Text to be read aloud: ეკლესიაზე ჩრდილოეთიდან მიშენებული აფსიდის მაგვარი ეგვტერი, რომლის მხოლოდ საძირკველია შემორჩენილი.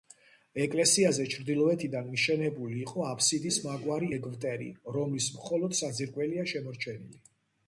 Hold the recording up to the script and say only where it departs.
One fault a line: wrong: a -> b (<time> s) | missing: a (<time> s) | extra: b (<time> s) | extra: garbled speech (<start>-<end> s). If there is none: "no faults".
extra: იყო (2.9 s)